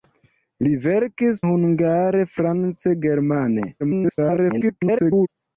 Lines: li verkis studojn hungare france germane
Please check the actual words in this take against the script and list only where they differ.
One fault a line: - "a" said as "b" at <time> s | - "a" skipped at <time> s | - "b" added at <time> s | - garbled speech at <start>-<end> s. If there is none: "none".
- "studojn" skipped at 1.4 s
- garbled speech at 3.8-5.3 s